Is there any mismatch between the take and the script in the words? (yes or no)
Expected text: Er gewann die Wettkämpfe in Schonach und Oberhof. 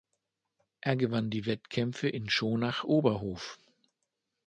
yes